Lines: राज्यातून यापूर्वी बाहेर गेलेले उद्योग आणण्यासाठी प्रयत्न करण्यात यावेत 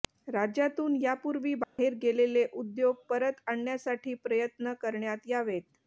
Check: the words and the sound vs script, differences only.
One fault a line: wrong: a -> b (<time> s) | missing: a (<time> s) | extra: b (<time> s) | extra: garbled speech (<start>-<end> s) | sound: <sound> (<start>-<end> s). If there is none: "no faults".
sound: dropout (1.6-1.8 s)
extra: परत (3.1 s)